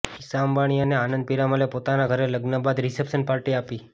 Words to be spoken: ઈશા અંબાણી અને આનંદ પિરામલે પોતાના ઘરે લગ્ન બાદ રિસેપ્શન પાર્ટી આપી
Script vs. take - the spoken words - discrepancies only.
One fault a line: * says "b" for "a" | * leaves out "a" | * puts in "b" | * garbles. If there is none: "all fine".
all fine